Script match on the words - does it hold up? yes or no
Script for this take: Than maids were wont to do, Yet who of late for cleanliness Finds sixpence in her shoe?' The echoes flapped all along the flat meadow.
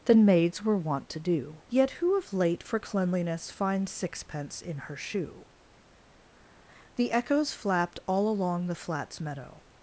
no